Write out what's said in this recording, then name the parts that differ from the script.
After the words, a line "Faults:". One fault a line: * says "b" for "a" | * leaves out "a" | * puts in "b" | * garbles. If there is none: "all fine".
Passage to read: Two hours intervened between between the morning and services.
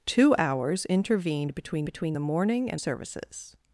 Two hours intervened between between the morning and services.
Faults:
all fine